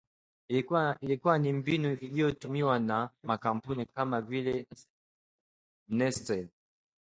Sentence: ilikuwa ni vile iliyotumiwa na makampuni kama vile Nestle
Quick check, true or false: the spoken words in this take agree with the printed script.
false